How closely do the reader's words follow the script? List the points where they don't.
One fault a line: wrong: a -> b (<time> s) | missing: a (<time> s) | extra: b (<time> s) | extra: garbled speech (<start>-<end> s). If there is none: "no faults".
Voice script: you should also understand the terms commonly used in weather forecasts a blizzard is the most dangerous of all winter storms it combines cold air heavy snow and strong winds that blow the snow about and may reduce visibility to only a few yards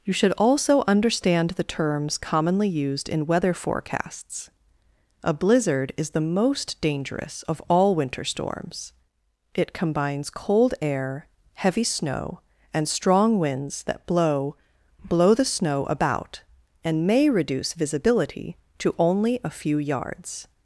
extra: blow (15.0 s)